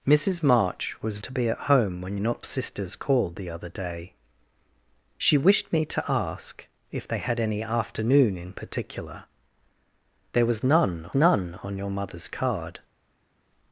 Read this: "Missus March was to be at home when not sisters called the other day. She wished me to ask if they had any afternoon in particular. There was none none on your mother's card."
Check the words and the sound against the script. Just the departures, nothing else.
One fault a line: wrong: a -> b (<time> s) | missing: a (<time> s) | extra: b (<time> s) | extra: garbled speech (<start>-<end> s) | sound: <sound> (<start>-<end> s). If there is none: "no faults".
no faults